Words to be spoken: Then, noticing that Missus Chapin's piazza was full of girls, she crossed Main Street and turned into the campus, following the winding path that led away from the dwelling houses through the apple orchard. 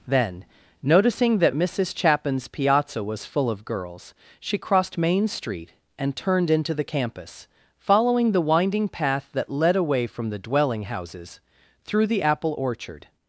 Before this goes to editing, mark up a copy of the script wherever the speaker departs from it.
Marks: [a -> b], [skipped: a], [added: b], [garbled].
Then, noticing that Missus Chapin's piazza was full of girls, she crossed Main Street and turned into the campus, following the winding path that led away from the dwelling houses through the apple orchard.